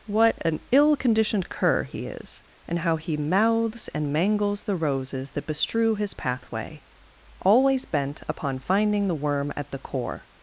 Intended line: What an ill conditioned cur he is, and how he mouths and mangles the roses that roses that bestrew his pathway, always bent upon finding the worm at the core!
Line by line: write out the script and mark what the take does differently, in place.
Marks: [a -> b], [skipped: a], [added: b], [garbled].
What an ill conditioned cur he is, and how he mouths and mangles the roses that [skipped: roses that] bestrew his pathway, always bent upon finding the worm at the core!